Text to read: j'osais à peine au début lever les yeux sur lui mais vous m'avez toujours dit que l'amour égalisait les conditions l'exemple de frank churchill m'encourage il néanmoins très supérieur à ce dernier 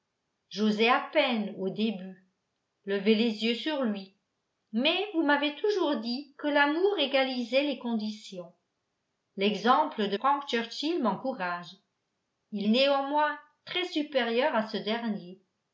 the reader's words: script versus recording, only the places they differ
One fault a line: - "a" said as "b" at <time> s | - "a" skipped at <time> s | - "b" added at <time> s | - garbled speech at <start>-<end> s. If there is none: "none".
none